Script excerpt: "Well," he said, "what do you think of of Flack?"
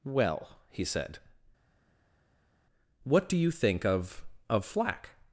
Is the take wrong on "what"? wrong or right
right